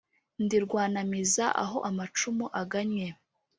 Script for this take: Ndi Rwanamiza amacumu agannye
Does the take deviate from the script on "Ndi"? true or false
false